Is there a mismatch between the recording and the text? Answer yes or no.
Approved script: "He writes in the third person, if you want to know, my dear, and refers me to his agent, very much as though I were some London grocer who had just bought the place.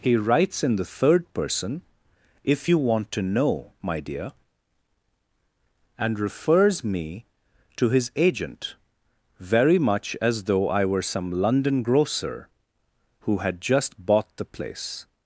no